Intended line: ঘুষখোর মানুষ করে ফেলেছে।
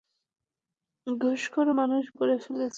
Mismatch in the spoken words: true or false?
false